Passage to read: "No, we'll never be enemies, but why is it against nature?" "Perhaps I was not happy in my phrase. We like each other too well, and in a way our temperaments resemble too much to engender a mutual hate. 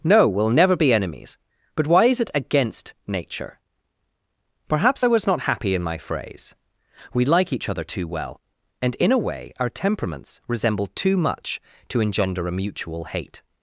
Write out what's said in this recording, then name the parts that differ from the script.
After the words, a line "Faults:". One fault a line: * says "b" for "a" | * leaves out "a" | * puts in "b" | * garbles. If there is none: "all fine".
"No, we'll never be enemies, but why is it against nature?" "Perhaps I was not happy in my phrase. We like each other too well, and in a way our temperaments resemble too much to engender a mutual hate.
Faults:
all fine